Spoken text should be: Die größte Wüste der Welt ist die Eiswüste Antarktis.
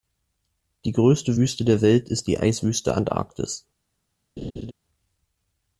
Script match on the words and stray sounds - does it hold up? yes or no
no